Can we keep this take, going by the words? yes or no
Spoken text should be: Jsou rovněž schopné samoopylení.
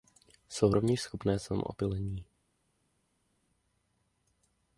yes